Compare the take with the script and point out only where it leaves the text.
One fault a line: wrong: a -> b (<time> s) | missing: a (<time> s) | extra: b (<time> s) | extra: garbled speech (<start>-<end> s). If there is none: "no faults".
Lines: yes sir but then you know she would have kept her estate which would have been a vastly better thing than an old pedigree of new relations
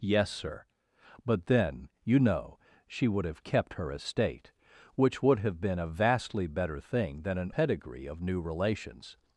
missing: old (7.5 s)